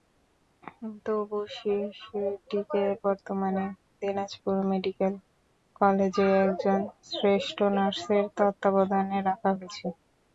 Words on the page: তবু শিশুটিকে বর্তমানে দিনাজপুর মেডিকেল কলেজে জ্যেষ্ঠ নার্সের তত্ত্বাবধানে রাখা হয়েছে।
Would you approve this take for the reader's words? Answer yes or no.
no